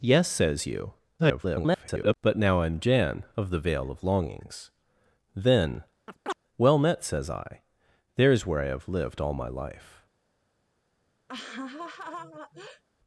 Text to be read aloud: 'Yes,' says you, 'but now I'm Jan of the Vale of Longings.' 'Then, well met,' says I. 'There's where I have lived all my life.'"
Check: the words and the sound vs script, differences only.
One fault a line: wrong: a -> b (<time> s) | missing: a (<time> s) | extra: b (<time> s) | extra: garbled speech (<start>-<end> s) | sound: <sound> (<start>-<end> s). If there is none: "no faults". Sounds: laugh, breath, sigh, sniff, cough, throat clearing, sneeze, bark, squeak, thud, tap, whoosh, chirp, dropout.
extra: garbled speech (1.2-2.2 s)
sound: chirp (6.1-6.4 s)
sound: laugh (11.3-12.8 s)